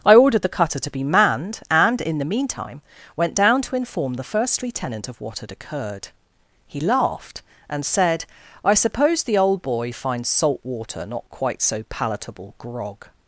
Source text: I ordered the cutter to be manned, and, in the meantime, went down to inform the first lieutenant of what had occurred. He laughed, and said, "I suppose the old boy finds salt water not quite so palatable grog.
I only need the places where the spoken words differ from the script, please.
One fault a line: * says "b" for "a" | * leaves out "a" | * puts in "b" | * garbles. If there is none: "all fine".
all fine